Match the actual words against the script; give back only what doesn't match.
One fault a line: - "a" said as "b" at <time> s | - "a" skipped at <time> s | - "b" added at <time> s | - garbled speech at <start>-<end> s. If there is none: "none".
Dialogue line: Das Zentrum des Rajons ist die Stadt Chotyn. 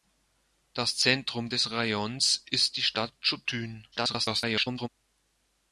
- garbled speech at 3.9-4.9 s